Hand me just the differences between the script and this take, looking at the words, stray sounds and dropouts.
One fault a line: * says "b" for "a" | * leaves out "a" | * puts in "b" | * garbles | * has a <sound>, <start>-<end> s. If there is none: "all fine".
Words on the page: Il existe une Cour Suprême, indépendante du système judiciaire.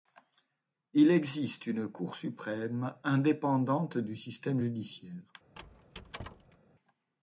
* has a squeak, 5.6-6.6 s